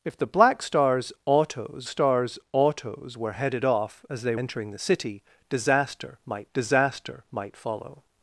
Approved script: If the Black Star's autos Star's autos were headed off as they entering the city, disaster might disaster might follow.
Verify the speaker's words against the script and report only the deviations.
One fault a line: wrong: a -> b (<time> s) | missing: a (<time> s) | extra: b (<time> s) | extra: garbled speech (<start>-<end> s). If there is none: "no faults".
no faults